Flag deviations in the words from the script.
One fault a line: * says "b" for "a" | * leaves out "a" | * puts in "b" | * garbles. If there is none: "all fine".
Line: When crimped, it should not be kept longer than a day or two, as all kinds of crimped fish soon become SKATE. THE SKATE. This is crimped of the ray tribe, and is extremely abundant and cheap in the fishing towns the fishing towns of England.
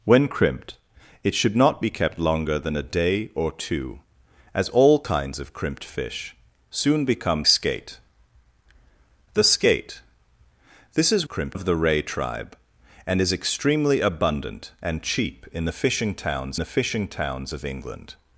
all fine